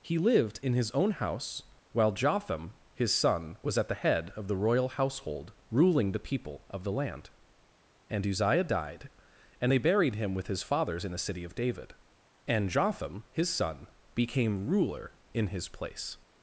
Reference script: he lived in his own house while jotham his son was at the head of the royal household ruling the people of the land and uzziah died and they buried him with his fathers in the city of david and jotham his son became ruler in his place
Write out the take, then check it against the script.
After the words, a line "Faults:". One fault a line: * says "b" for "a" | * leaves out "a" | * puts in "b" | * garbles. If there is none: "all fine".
he lived in his own house while jotham his son was at the head of the royal household ruling the people of the land and uzziah died and they buried him with his fathers in the city of david and jotham his son became ruler in his place
Faults:
all fine